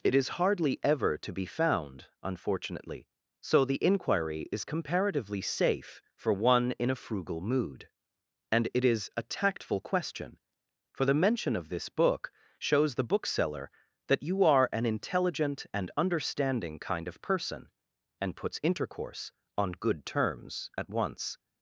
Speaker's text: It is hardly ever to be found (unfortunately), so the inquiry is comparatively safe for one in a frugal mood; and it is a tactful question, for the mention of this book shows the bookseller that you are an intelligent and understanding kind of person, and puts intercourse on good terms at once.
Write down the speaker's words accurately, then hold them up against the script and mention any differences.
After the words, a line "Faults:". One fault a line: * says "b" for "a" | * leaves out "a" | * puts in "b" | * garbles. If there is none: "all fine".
It is hardly ever to be found (unfortunately), so the inquiry is comparatively safe for one in a frugal mood; and it is a tactful question, for the mention of this book shows the bookseller that you are an intelligent and understanding kind of person, and puts intercourse on good terms at once.
Faults:
all fine